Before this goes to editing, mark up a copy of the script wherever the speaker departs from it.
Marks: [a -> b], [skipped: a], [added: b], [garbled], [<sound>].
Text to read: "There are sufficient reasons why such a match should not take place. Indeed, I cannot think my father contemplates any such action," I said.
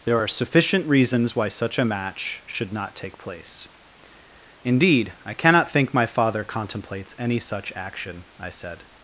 "There are sufficient reasons why such a match should not take place. Indeed, I cannot think my father contemplates any such action," I said.